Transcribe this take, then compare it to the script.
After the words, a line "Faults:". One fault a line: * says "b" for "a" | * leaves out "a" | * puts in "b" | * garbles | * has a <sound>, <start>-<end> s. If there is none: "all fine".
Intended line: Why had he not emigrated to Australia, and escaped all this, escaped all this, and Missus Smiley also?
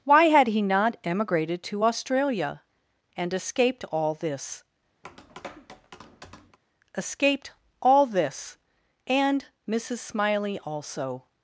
Why had he not emigrated to Australia, and escaped all this, escaped all this, and Missus Smiley also?
Faults:
* has a tap, 5.0-6.6 s